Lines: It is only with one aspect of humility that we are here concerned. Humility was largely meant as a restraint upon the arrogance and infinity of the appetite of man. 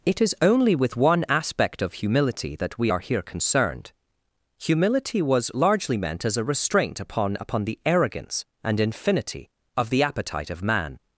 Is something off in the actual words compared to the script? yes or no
yes